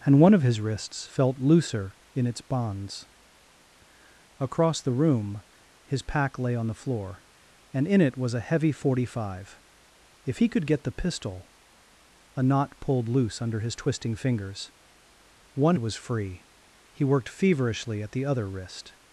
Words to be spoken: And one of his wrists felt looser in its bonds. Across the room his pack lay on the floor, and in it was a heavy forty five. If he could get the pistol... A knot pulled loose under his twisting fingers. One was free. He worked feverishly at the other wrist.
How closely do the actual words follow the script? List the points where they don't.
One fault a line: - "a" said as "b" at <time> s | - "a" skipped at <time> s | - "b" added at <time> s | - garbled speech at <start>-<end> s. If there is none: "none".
none